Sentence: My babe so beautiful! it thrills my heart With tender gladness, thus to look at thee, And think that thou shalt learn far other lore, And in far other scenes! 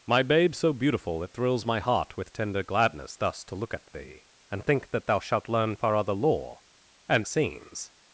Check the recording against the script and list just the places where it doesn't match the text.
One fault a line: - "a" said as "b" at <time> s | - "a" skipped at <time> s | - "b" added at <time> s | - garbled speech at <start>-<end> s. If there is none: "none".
- "in far other" skipped at 7.3 s